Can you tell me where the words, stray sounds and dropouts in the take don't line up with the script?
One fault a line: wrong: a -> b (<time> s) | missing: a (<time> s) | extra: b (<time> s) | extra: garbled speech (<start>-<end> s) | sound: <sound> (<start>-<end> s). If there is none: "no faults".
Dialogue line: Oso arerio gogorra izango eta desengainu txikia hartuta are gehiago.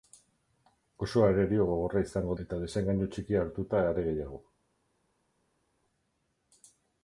no faults